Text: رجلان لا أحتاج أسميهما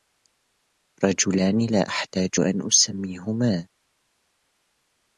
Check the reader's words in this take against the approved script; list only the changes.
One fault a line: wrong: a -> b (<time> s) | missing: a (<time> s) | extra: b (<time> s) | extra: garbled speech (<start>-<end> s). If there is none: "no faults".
extra: أن (2.4 s)